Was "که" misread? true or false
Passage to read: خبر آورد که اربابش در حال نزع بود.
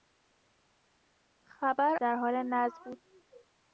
true